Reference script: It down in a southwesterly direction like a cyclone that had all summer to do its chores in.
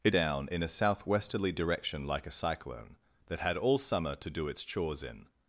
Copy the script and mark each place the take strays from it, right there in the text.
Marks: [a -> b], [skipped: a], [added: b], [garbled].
It down in a southwesterly direction like a cyclone that had all summer to do its chores in.